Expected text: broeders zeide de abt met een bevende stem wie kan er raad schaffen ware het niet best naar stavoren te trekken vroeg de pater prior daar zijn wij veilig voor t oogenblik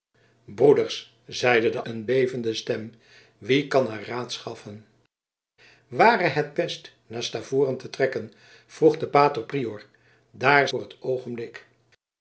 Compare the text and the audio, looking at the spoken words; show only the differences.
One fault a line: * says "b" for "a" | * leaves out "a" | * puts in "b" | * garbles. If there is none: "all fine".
* leaves out "abt met"
* leaves out "niet"
* leaves out "zijn wij veilig"